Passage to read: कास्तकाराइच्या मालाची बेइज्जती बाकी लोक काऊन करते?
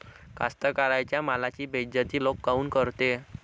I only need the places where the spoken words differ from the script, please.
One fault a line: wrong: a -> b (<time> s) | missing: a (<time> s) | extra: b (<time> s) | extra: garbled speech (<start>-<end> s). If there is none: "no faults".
missing: बाकी (2.2 s)